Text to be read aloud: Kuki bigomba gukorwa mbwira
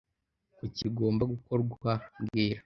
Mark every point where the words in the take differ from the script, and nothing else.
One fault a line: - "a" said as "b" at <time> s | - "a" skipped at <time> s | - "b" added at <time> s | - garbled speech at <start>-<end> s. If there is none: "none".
none